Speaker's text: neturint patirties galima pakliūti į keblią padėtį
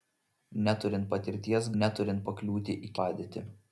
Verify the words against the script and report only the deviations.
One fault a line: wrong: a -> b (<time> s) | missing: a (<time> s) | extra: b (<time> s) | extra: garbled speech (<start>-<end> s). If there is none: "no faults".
wrong: galima -> neturint (1.8 s)
missing: keblią (3.0 s)